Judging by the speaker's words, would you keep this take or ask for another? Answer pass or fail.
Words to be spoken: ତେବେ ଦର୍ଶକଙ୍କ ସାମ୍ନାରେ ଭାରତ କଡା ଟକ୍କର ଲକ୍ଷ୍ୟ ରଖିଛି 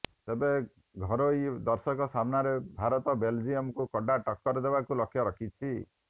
fail